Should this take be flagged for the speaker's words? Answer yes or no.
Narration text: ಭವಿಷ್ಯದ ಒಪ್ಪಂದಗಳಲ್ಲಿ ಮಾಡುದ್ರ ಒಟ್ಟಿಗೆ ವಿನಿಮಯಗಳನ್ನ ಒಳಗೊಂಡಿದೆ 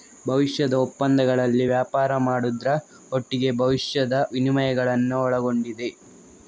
yes